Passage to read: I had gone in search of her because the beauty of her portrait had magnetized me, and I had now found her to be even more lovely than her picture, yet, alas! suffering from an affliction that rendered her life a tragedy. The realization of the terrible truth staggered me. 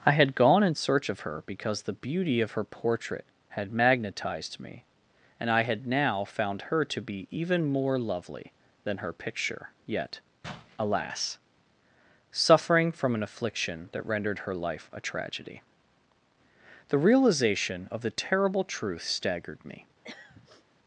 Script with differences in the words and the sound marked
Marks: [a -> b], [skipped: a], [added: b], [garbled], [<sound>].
I had gone in search of her because the beauty of her portrait had magnetized me, and I had now found her to be even more lovely than her picture, yet, alas! suffering from an affliction that rendered her life a tragedy. The realization of the terrible truth staggered me. [throat clearing]